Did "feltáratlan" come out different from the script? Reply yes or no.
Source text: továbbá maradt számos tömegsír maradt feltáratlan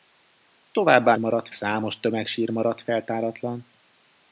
no